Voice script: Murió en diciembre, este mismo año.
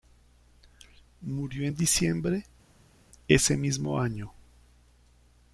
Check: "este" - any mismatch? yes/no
yes